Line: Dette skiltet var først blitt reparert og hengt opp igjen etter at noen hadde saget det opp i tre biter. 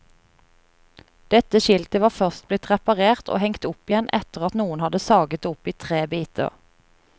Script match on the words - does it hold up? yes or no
yes